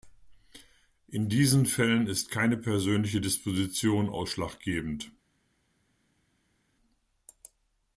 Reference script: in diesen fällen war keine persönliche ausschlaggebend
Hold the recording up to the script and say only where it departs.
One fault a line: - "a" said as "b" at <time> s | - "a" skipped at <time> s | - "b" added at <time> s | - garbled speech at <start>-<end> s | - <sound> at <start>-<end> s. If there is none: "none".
- "war" said as "ist" at 2.1 s
- "disposition" added at 3.2 s